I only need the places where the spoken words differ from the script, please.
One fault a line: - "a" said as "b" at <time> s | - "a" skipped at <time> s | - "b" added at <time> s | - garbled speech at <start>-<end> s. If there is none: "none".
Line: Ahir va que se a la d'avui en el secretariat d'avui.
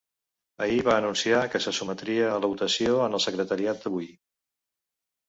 - "anunciar" added at 1.0 s
- "sotmetria" added at 1.8 s
- "d'avui" said as "votació" at 2.5 s